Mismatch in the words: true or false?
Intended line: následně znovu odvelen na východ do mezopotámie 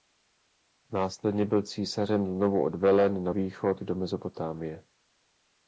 true